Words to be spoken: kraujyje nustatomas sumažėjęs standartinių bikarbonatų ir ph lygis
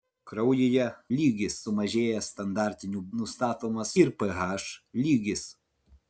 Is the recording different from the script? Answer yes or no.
yes